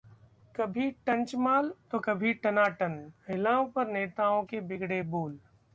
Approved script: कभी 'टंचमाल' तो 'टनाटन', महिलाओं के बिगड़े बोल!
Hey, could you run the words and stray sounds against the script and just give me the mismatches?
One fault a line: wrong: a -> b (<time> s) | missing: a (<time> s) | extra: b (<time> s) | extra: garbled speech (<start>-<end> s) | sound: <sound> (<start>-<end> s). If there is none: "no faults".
extra: कभी (2.0 s)
extra: पर नेताओं (3.7 s)